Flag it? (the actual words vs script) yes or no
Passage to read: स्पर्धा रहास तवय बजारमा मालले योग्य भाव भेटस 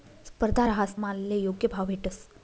yes